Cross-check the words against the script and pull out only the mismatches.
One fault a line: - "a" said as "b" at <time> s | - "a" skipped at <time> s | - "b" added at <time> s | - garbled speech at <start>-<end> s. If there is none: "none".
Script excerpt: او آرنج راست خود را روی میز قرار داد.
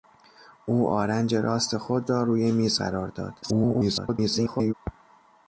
- garbled speech at 3.4-4.7 s